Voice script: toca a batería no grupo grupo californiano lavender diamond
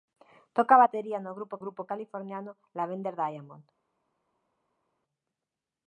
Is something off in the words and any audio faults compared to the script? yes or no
no